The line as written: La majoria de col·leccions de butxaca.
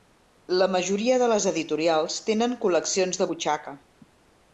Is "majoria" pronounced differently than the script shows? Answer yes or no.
no